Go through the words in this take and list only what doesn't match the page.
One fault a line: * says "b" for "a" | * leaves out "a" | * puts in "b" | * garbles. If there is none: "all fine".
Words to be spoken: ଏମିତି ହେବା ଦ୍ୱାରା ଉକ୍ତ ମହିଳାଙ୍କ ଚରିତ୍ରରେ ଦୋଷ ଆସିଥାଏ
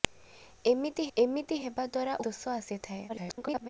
* puts in "ଏମିତି"
* leaves out "ଉକ୍ତ ମହିଳାଙ୍କ ଚରିତ୍ରରେ"
* garbles